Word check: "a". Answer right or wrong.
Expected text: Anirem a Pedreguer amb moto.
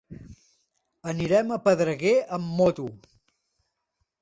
right